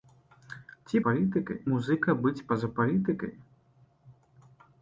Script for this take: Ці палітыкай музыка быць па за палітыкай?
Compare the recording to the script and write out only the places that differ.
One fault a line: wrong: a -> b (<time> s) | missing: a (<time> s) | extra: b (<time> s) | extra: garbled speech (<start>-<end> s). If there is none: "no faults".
no faults